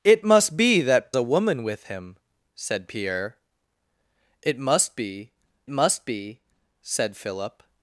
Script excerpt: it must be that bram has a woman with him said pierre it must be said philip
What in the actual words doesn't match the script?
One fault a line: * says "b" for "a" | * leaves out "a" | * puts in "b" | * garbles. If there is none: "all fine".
* leaves out "bram has"
* puts in "must be"